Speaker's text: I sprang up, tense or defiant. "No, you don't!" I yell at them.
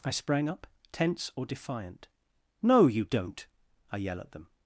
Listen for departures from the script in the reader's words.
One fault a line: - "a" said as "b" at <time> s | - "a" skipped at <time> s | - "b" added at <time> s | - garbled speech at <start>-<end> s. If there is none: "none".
none